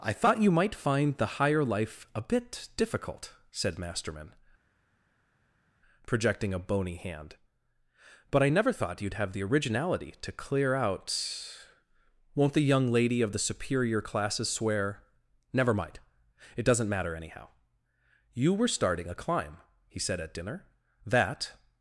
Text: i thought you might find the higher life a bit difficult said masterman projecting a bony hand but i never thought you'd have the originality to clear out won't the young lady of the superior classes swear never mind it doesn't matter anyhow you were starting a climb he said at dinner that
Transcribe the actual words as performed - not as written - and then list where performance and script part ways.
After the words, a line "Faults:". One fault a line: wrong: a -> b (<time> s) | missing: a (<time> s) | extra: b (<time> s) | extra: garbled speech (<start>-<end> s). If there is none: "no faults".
i thought you might find the higher life a bit difficult said masterman projecting a bony hand but i never thought you'd have the originality to clear out won't the young lady of the superior classes swear never mind it doesn't matter anyhow you were starting a climb he said at dinner that
Faults:
no faults